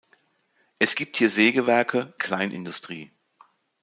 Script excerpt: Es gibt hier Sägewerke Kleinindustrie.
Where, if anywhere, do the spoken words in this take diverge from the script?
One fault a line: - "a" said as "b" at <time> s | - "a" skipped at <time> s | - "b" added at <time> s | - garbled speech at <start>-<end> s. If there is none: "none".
none